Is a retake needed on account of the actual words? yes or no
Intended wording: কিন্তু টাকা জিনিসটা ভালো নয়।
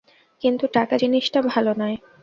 no